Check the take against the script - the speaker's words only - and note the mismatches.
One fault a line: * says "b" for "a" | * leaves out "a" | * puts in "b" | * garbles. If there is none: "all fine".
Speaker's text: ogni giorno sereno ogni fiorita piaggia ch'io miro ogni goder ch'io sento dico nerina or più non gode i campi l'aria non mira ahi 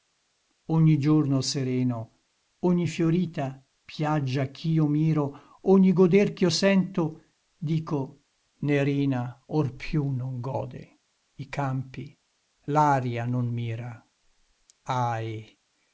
all fine